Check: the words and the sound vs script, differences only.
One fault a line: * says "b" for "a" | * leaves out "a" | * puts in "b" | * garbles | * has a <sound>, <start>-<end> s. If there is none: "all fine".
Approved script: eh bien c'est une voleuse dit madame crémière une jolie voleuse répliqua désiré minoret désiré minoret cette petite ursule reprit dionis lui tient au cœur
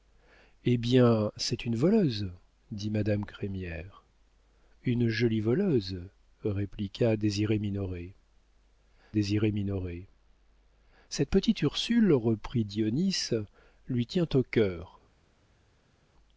all fine